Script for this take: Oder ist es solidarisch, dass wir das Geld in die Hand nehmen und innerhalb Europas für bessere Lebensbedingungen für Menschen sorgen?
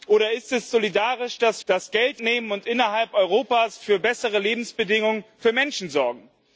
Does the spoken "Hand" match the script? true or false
false